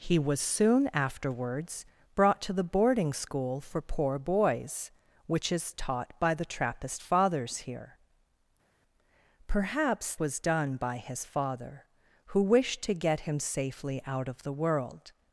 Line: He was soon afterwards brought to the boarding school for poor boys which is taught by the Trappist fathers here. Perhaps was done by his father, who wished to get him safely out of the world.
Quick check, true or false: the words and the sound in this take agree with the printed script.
true